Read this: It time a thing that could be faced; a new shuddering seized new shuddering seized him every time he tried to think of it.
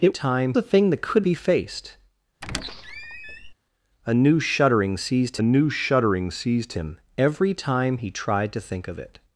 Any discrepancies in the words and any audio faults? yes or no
yes